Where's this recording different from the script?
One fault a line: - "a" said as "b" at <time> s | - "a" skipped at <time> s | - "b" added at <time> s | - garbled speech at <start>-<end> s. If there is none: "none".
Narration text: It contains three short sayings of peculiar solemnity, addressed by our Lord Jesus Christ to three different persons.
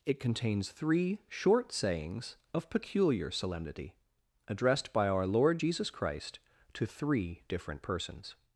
none